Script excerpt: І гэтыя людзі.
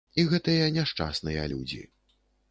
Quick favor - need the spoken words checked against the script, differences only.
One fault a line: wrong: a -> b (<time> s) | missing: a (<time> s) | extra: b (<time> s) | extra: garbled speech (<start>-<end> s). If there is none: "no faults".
extra: няшчасныя (0.7 s)